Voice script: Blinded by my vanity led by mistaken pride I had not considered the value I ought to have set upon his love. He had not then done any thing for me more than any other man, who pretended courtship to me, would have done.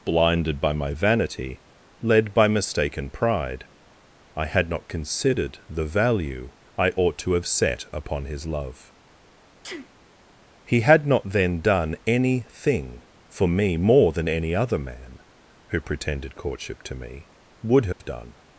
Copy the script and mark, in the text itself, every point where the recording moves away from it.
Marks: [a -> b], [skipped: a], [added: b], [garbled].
Blinded by my vanity led by mistaken pride I had not considered the value I ought to have set upon his love. He had not then done any thing for me more than any other man, who pretended courtship to me, would have done.